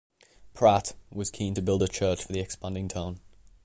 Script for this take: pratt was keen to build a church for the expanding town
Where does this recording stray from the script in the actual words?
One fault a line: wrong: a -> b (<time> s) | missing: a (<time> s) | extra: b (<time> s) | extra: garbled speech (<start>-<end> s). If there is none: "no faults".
no faults